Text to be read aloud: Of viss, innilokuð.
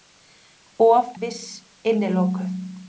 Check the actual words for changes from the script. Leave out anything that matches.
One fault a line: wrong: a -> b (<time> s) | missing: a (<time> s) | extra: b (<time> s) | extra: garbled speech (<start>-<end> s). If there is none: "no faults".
no faults